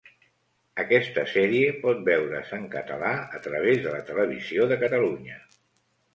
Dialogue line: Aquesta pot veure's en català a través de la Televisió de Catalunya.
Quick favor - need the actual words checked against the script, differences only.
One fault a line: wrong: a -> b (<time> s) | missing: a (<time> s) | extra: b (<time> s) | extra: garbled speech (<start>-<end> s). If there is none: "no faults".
extra: sèrie (1.3 s)